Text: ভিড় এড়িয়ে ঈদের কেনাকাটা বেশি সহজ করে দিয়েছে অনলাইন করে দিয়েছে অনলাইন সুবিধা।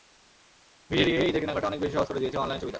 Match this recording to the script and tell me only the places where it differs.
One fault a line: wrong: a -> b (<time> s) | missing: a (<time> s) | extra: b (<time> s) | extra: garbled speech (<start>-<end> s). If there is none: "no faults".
extra: অনেক (1.7 s)
missing: করে দিয়েছে অনলাইন (2.6 s)